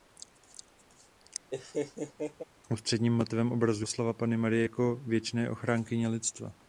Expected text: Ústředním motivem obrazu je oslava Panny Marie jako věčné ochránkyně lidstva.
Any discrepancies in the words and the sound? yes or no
yes